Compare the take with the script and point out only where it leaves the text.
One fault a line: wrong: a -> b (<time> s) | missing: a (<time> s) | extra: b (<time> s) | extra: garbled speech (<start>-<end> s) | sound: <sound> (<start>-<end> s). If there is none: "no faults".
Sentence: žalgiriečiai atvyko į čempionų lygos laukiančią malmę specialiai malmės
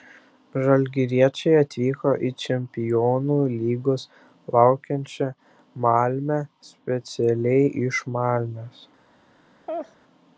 extra: iš (7.9 s)
sound: laugh (9.7-10.0 s)